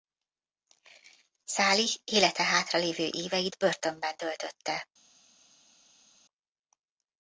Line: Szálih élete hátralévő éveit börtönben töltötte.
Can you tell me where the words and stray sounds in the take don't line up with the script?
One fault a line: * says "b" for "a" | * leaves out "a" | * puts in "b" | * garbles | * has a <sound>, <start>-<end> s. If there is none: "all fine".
all fine